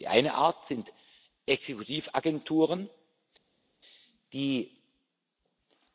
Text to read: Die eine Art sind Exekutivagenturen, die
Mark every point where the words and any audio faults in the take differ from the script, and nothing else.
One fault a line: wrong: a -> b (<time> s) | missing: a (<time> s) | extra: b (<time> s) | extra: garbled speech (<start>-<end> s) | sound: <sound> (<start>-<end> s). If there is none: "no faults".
no faults